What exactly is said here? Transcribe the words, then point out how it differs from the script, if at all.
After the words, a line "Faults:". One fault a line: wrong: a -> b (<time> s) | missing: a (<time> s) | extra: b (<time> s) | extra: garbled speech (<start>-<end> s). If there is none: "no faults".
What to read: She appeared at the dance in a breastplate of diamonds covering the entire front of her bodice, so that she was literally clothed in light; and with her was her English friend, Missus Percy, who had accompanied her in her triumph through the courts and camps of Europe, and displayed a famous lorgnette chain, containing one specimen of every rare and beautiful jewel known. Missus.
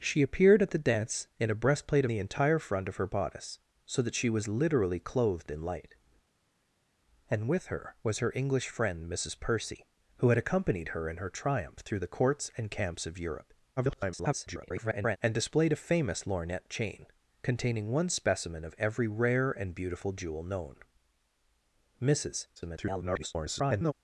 She appeared at the dance in a breastplate the entire front of her bodice, so that she was literally clothed in light; and with her was her English friend, Missus Percy, who had accompanied her in her triumph through the courts and camps of Europe, [garbled] and displayed a famous lorgnette chain, containing one specimen of every rare and beautiful jewel known. Missus. [garbled]
Faults:
missing: of diamonds covering (2.0 s)
extra: garbled speech (13.8-15.2 s)
extra: garbled speech (22.6-23.9 s)